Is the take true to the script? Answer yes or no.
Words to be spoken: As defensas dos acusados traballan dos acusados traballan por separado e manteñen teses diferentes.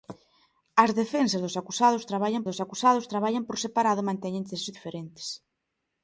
yes